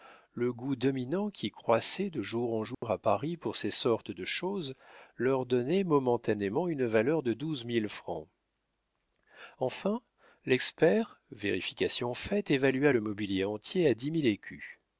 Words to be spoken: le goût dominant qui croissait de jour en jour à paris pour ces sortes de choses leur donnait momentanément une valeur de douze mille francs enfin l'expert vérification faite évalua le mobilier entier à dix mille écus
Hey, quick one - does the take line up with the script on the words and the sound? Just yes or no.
no